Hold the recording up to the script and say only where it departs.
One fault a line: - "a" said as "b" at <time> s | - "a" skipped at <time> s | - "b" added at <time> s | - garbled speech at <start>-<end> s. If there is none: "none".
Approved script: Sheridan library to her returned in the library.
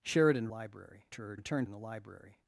none